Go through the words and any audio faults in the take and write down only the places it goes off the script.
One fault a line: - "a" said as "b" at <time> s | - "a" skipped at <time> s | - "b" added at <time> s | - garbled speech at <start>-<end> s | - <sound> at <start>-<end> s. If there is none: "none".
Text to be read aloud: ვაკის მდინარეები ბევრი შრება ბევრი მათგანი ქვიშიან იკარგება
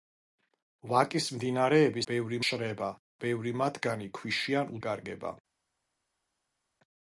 none